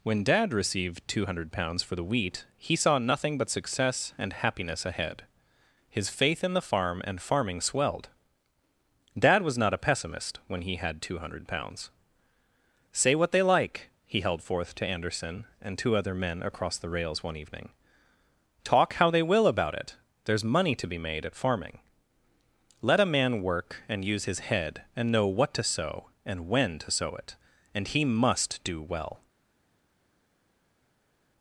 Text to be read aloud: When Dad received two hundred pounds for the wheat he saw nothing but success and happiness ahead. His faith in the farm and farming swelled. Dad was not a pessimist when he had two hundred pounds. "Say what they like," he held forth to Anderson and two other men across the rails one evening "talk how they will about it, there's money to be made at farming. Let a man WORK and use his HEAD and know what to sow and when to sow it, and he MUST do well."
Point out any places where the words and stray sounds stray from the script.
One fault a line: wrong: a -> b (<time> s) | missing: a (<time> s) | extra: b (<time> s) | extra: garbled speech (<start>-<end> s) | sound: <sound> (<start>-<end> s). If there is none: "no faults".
no faults